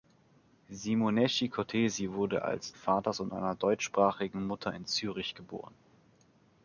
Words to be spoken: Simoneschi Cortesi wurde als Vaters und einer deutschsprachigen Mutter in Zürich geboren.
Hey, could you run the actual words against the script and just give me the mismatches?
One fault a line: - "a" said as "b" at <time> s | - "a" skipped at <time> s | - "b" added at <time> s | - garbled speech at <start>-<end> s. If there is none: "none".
none